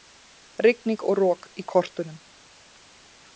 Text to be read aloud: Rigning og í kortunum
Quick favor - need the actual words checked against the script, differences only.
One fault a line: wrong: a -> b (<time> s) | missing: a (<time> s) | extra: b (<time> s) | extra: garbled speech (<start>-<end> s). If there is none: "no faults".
extra: rok (1.2 s)